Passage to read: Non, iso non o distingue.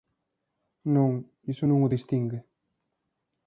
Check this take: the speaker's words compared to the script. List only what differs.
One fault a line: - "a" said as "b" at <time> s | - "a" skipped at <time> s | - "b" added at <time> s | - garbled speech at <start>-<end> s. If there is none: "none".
none